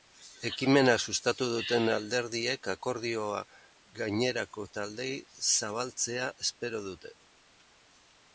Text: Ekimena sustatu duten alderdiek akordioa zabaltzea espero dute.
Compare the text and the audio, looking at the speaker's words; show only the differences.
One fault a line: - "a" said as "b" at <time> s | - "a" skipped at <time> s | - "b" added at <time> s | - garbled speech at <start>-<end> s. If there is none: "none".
- "gainerako taldeei" added at 4.0 s